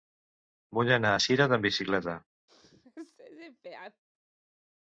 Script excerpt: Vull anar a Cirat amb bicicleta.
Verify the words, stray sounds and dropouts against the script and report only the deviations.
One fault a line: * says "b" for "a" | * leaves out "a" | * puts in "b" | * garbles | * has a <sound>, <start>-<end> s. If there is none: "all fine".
* has a sneeze, 2.5-4.0 s